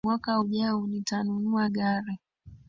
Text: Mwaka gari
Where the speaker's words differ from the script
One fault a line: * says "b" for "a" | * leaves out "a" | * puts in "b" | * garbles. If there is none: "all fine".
* puts in "ujao nitanunua"